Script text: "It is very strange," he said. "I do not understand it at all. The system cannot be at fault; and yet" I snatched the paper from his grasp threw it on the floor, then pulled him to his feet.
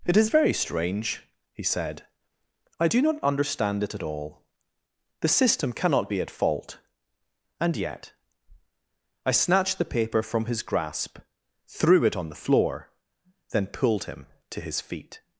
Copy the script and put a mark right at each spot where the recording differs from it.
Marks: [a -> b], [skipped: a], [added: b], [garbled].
"It is very strange," he said. "I do not understand it at all. The system cannot be at fault; and yet" I snatched the paper from his grasp threw it on the floor, then pulled him to his feet.